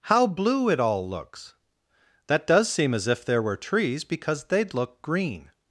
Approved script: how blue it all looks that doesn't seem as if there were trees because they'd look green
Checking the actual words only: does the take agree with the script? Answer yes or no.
no